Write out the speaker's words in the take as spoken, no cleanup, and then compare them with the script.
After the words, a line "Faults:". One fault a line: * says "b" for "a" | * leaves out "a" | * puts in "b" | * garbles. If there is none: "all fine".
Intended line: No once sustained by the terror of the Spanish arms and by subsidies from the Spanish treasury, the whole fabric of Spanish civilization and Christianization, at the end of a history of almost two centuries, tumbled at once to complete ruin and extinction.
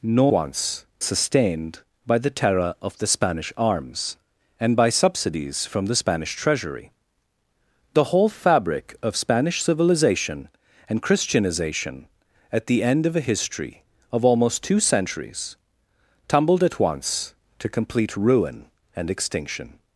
No once sustained by the terror of the Spanish arms and by subsidies from the Spanish treasury, the whole fabric of Spanish civilization and Christianization, at the end of a history of almost two centuries, tumbled at once to complete ruin and extinction.
Faults:
all fine